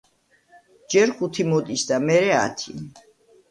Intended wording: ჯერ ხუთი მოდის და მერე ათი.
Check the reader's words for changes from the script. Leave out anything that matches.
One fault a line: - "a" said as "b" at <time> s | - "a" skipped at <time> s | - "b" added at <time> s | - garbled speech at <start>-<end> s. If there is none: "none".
none